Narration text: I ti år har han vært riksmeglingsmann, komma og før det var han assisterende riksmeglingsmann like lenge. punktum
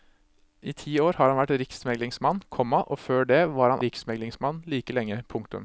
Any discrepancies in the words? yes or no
yes